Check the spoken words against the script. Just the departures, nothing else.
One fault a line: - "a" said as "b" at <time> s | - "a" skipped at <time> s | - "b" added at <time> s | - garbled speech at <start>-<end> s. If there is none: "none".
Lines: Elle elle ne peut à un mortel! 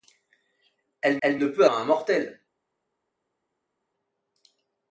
none